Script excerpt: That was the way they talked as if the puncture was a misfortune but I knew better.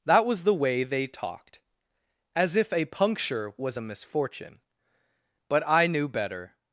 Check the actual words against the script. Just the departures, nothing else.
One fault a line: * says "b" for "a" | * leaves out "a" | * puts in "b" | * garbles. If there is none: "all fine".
* says "a" for "the"